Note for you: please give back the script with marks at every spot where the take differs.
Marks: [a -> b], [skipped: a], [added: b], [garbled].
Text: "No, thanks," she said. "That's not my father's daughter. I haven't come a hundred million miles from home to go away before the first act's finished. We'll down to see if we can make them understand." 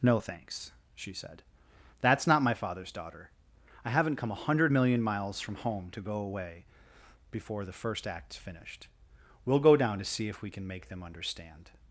"No, thanks," she said. "That's not my father's daughter. I haven't come a hundred million miles from home to go away before the first act's finished. We'll [added: go] down to see if we can make them understand."